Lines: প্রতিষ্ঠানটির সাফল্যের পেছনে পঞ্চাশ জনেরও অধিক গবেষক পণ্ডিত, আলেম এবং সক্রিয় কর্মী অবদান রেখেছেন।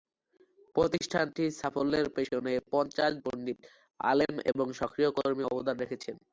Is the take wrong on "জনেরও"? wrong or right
wrong